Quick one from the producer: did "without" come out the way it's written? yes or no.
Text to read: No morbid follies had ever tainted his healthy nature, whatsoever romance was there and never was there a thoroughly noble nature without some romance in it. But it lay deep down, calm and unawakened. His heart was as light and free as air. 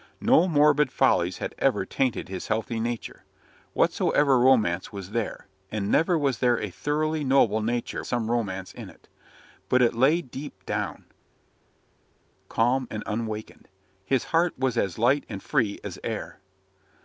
no